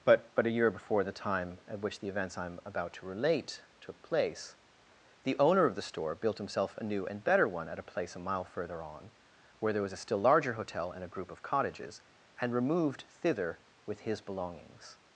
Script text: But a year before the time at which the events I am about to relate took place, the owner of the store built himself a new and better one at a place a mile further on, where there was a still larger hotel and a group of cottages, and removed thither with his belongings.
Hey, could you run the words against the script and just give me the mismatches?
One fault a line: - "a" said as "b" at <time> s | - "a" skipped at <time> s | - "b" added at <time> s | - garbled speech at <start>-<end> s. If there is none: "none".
- "but" added at 0.3 s